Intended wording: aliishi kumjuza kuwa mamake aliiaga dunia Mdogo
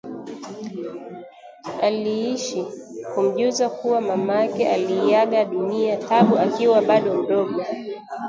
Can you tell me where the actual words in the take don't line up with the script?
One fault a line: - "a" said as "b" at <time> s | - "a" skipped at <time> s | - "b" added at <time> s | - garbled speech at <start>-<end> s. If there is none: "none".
- "Taabu akiwa bado" added at 6.0 s